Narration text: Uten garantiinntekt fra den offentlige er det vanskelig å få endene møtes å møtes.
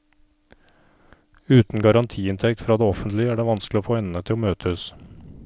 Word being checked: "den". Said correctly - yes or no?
no